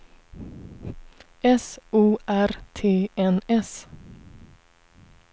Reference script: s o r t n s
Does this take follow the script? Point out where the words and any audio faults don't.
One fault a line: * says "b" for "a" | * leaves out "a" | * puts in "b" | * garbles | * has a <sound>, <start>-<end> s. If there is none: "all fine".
all fine